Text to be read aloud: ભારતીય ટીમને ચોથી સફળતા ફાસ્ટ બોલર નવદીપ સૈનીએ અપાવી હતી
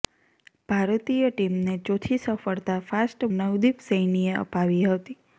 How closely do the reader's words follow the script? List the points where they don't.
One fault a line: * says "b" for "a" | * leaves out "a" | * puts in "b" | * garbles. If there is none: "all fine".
* leaves out "બોલર"